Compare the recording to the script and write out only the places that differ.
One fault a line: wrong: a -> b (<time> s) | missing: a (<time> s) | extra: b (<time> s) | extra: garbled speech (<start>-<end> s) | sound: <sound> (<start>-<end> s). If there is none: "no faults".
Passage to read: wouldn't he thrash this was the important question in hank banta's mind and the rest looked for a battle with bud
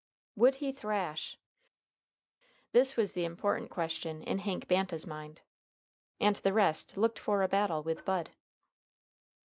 wrong: wouldn't -> would (0.3 s)